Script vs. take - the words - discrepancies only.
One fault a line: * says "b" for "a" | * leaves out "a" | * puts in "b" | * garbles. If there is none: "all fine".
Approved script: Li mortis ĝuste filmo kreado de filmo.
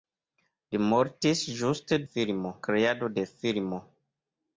all fine